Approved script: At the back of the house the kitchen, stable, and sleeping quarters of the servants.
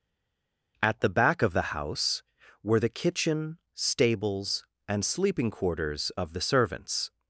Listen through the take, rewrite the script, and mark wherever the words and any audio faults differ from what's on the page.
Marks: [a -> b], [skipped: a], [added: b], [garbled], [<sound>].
At the back of the house [added: were] the kitchen, [stable, -> stables] and sleeping quarters of the servants.